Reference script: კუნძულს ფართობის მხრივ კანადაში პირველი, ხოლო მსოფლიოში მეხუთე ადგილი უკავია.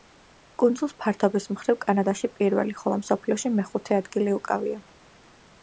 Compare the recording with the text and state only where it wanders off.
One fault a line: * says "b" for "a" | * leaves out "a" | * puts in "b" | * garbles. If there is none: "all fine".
all fine